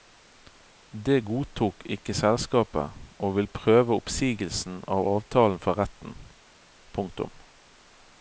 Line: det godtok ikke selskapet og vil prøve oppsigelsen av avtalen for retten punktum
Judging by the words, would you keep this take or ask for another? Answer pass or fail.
pass